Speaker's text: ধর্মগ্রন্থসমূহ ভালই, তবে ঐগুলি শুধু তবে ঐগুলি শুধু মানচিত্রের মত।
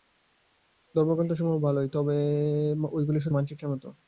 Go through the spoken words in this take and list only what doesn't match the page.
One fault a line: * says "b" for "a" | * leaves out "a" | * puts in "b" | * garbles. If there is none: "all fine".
* leaves out "তবে ঐগুলি শুধু"